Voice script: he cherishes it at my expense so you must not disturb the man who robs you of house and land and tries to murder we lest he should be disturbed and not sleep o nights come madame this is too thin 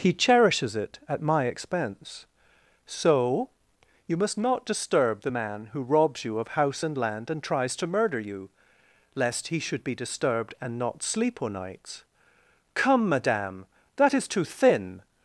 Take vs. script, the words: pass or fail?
fail